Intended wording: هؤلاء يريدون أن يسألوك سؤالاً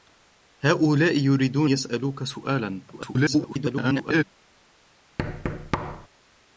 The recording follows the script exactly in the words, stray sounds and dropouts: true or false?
false